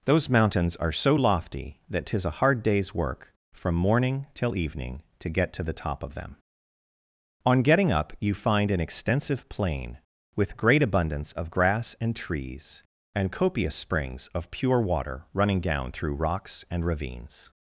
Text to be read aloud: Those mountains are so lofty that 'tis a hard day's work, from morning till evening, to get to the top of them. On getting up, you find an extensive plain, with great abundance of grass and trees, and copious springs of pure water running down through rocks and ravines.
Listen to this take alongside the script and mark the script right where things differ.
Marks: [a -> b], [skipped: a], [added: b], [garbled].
Those mountains are so lofty that 'tis a hard day's work, from morning till evening, to get to the top of them. On getting up, you find an extensive plain, with great abundance of grass and trees, and copious springs of pure water running down through rocks and ravines.